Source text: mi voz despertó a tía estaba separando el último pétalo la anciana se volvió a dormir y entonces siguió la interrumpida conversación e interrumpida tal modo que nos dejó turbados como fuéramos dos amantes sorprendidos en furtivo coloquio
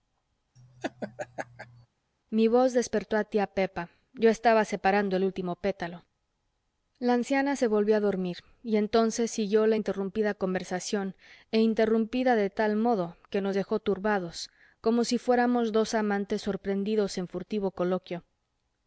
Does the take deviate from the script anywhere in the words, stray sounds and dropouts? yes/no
yes